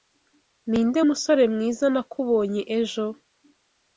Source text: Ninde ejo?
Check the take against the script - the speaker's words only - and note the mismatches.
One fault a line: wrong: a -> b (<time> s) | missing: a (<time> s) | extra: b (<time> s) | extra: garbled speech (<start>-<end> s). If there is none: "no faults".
extra: musore mwiza nakubonye (1.1 s)